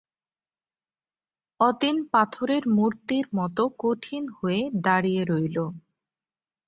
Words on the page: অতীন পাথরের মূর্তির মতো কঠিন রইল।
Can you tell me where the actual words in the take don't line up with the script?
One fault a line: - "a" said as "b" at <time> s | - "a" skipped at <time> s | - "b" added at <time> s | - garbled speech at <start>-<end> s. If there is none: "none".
- "হয়ে দাঁড়িয়ে" added at 4.4 s